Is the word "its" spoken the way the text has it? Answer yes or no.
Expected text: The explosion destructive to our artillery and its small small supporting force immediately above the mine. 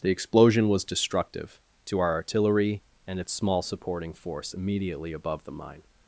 yes